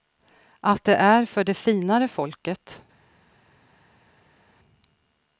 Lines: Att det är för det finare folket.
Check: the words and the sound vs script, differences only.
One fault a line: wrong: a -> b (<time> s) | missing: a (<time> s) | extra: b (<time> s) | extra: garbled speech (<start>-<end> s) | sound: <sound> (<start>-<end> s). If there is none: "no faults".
no faults